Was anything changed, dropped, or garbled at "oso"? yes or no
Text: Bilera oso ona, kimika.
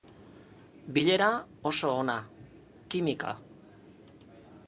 no